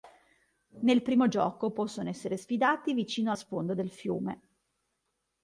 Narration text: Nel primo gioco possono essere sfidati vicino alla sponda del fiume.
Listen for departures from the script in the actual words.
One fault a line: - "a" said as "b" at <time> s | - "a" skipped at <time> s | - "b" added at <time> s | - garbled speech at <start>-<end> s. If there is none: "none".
- "alla" skipped at 3.3 s